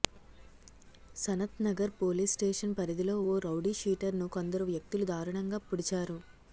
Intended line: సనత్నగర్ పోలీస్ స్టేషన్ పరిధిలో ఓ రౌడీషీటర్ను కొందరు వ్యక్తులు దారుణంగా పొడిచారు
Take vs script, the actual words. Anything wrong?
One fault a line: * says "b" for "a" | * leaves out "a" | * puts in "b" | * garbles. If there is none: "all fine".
all fine